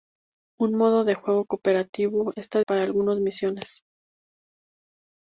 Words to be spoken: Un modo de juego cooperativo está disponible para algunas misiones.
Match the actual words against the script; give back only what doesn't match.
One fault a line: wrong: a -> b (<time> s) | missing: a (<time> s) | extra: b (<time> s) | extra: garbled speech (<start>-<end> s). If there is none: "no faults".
missing: disponible (2.6 s)